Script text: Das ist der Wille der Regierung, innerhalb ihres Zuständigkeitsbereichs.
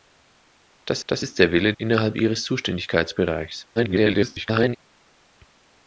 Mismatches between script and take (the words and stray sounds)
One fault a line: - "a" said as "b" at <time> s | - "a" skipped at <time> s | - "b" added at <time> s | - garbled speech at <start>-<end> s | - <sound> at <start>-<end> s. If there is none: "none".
- "das" added at 1.1 s
- "der Regierung" skipped at 1.7 s
- garbled speech at 3.8-4.8 s